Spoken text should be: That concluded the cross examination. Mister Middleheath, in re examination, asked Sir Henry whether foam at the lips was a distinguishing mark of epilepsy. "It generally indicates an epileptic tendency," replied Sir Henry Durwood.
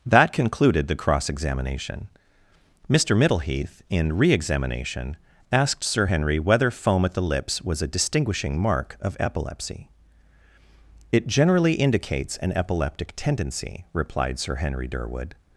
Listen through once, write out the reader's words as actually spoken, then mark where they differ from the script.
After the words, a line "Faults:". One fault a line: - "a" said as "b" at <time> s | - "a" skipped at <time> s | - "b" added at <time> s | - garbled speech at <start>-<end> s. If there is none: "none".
That concluded the cross examination. Mister Middleheath, in re examination, asked Sir Henry whether foam at the lips was a distinguishing mark of epilepsy. "It generally indicates an epileptic tendency," replied Sir Henry Durwood.
Faults:
none